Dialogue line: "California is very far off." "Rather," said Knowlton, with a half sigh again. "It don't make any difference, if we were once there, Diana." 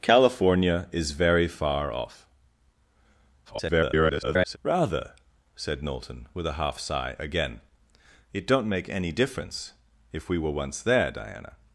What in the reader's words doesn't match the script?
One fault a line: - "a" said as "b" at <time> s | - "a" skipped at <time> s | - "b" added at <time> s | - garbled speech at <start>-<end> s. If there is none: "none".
- garbled speech at 3.4-4.6 s